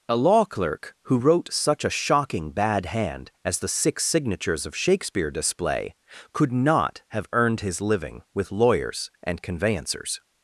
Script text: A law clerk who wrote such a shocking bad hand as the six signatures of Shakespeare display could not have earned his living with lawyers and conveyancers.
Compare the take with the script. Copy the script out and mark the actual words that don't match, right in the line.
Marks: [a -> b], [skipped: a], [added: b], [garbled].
A law clerk who wrote such a shocking bad hand as the six signatures of Shakespeare display could not have earned his living with lawyers and conveyancers.